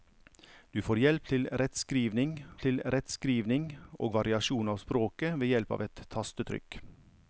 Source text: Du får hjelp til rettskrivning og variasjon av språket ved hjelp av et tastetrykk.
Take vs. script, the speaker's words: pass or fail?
fail